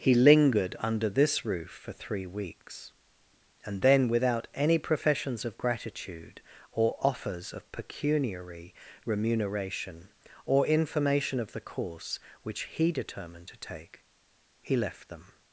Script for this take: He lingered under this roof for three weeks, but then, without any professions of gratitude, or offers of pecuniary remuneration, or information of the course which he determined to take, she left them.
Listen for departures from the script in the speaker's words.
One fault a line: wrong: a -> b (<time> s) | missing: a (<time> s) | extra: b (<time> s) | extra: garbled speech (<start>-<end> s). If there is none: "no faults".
wrong: but -> and (3.7 s)
wrong: she -> he (14.6 s)